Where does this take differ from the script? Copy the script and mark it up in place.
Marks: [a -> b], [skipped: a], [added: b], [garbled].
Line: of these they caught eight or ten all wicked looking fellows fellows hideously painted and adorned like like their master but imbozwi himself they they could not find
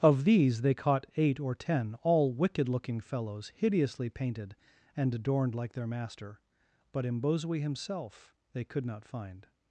of these they caught eight or ten all wicked looking fellows [skipped: fellows] hideously painted and adorned like [skipped: like] their master but imbozwi himself they [skipped: they] could not find